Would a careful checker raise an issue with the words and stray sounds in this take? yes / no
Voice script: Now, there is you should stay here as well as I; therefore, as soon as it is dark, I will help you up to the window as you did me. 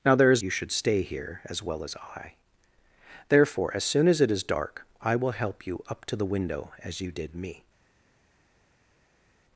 no